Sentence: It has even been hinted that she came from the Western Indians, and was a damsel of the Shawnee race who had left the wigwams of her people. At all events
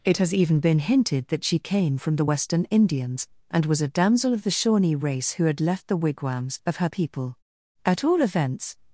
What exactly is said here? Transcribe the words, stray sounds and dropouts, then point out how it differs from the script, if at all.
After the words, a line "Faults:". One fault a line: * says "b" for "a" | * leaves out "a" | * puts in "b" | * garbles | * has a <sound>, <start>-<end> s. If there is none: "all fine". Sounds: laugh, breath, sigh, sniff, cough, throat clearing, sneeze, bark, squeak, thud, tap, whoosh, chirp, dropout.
It has even been hinted that she came from the Western Indians, and was a damsel of the Shawnee race who had left the wigwams of her people. At all events
Faults:
all fine